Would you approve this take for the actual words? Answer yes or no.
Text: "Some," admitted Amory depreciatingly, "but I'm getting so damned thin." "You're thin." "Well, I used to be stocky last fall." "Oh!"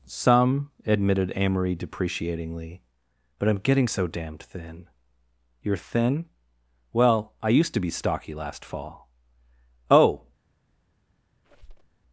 yes